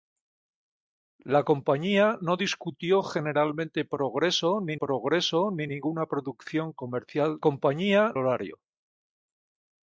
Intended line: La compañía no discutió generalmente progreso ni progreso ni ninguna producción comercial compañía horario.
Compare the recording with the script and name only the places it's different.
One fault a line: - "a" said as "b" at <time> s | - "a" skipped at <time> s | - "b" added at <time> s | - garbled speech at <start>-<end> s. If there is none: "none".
none